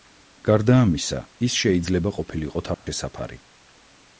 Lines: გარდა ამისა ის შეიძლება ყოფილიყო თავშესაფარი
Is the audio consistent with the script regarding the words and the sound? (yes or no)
no